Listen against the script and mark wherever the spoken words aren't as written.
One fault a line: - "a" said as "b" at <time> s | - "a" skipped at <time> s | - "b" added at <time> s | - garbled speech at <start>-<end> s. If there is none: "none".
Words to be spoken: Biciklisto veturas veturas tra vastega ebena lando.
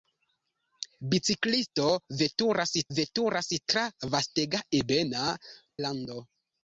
none